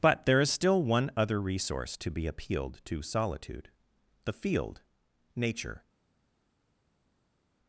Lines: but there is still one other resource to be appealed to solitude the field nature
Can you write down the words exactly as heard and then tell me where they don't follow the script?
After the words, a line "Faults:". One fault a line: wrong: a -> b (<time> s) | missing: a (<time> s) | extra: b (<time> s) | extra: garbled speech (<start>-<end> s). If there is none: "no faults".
but there is still one other resource to be appealed to solitude the field nature
Faults:
no faults